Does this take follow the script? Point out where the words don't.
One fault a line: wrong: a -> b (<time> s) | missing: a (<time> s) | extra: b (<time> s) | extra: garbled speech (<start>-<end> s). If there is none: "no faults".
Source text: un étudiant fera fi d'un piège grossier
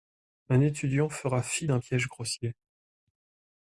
no faults